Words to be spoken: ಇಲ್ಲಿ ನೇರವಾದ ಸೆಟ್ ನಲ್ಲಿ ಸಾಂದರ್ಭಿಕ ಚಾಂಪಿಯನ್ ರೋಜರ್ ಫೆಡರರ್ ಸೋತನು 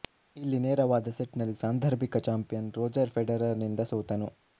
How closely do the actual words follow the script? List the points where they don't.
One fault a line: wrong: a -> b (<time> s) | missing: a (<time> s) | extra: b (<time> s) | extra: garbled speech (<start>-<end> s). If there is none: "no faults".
extra: ನಿಂದ (3.6 s)